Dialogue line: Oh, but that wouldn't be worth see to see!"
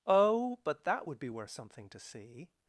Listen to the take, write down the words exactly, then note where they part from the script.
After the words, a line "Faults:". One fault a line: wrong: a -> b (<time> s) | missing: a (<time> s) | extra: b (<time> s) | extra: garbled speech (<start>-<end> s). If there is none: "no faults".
Oh, but that would be worth something to see!"
Faults:
wrong: wouldn't -> would (1.0 s)
wrong: see -> something (1.5 s)